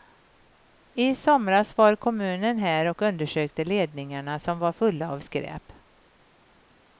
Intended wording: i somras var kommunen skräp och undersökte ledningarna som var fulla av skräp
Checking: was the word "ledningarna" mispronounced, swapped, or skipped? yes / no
no